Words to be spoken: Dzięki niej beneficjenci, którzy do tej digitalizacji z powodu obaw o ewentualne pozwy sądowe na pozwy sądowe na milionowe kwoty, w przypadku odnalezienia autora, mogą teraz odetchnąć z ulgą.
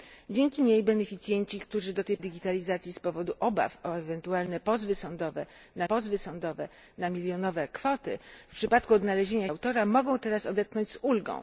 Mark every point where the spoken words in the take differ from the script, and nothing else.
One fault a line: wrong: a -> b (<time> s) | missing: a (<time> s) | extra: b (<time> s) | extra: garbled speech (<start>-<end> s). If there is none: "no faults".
no faults